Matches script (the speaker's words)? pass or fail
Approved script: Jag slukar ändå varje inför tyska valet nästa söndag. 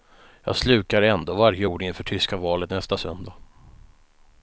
fail